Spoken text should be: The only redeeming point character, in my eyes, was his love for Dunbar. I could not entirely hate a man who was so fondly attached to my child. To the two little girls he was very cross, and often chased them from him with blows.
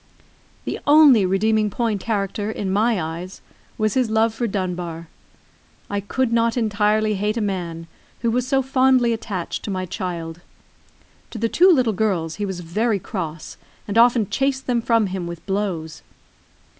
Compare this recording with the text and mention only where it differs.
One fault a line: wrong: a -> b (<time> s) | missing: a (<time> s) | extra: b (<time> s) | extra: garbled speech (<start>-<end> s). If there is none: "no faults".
no faults